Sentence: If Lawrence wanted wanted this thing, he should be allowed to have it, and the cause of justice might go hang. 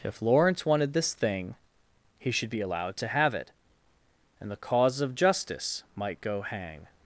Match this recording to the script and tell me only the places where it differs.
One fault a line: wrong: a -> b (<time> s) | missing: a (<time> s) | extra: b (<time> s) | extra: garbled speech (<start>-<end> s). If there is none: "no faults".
missing: wanted (0.9 s)